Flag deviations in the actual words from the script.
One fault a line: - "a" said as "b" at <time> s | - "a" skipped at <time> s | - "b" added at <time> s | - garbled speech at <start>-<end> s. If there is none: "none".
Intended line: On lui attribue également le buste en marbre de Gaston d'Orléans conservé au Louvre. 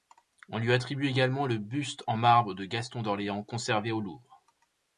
none